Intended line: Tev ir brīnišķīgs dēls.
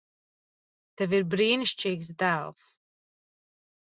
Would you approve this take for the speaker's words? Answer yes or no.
yes